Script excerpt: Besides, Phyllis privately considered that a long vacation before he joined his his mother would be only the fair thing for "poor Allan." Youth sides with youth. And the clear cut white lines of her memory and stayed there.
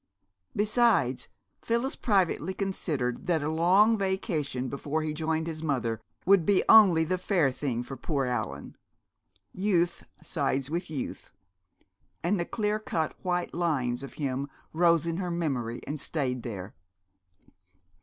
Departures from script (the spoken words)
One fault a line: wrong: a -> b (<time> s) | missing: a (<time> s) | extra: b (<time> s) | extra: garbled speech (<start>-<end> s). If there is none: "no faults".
missing: his (5.6 s)
extra: him rose in (14.2 s)